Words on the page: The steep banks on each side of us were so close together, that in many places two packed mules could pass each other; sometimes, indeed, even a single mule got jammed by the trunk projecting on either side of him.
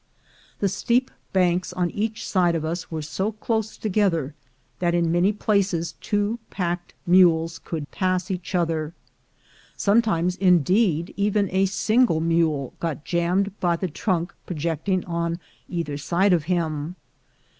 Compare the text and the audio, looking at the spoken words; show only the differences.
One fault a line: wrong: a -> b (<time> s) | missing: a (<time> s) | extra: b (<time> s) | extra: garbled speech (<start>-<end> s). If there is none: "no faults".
no faults